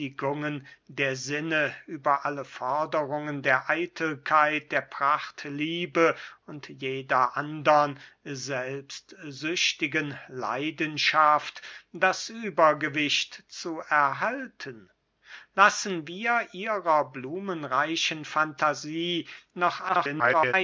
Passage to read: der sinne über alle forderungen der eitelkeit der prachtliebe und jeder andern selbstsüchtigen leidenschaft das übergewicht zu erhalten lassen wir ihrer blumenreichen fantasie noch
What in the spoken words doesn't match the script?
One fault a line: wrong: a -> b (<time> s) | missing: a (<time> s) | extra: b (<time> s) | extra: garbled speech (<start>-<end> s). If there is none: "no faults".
extra: garbled speech (19.9-20.5 s)